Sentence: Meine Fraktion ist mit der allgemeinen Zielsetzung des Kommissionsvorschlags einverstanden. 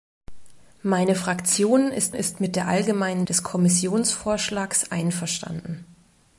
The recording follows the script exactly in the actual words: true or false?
false